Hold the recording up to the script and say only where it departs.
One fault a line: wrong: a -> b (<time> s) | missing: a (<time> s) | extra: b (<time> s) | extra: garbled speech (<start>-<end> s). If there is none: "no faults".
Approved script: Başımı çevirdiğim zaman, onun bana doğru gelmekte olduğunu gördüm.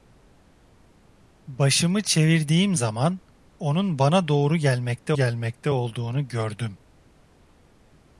extra: gelmekte (5.1 s)